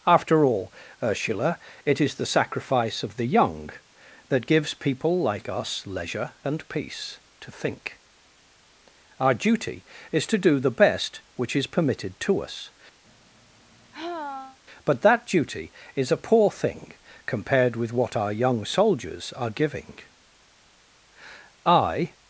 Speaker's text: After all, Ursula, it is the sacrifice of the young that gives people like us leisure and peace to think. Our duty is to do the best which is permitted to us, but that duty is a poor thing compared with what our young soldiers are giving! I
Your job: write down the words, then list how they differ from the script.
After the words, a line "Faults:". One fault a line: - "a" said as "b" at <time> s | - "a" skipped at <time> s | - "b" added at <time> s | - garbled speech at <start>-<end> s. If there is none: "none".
After all, Ursula, it is the sacrifice of the young that gives people like us leisure and peace to think. Our duty is to do the best which is permitted to us, but that duty is a poor thing compared with what our young soldiers are giving! I
Faults:
none